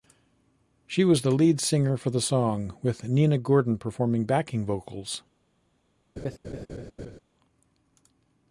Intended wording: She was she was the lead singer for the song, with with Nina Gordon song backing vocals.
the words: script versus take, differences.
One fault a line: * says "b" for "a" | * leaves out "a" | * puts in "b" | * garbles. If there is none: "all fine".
* leaves out "she was"
* leaves out "with"
* says "performing" for "song"